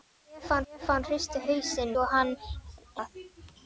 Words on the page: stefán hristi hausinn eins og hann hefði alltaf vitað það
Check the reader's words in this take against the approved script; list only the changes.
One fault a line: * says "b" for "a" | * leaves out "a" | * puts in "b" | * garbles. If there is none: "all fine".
* puts in "stefán"
* leaves out "eins"
* leaves out "hefði alltaf vitað"